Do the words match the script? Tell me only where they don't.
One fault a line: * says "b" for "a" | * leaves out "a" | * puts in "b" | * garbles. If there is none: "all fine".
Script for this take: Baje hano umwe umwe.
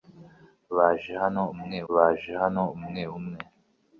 * puts in "baje hano umwe"